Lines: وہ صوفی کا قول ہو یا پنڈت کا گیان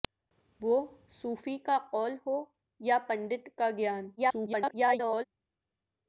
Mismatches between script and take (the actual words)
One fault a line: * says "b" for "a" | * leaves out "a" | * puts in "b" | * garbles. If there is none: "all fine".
* garbles